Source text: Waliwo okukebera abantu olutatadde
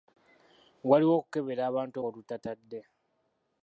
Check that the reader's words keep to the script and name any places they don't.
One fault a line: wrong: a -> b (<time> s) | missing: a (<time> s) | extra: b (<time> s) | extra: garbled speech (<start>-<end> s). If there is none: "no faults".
no faults